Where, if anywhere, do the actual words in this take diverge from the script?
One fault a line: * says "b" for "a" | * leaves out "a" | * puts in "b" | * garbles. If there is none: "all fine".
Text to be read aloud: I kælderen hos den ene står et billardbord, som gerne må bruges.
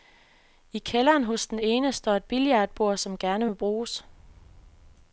all fine